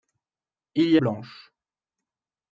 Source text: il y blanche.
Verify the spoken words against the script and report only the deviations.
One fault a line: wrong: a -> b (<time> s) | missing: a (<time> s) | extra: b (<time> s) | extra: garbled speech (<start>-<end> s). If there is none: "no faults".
no faults